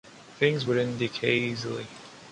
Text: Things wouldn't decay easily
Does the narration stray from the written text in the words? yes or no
no